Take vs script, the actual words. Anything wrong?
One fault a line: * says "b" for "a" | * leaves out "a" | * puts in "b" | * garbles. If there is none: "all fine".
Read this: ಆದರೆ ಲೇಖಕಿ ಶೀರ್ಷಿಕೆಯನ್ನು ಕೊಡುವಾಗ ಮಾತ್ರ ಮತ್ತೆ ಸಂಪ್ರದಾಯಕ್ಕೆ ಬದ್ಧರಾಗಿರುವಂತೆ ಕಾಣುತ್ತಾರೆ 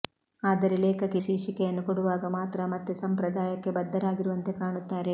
all fine